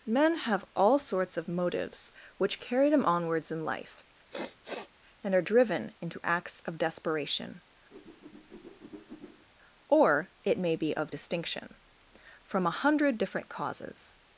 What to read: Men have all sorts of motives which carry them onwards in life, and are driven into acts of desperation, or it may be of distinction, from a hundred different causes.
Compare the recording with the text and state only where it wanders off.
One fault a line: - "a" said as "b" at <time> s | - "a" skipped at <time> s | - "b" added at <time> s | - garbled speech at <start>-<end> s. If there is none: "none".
none